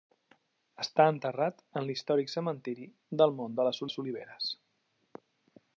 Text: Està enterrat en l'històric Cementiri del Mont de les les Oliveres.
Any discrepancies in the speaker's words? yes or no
no